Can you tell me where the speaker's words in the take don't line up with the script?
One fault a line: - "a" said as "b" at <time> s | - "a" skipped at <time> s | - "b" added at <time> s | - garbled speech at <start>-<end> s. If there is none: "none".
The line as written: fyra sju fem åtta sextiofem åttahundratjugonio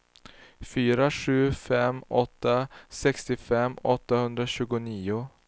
none